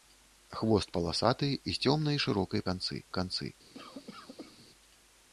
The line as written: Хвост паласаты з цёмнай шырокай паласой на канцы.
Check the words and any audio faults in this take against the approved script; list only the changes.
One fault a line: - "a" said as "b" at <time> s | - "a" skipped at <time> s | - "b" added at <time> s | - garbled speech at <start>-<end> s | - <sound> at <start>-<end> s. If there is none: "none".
- "паласой" said as "канцы" at 2.7 s
- cough at 3.7-4.7 s